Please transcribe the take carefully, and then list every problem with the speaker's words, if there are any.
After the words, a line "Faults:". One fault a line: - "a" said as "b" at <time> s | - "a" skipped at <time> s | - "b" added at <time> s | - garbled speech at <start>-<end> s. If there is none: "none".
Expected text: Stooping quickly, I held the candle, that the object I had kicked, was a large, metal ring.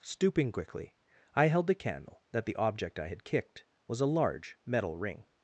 Stooping quickly, I held the candle, that the object I had kicked, was a large, metal ring.
Faults:
none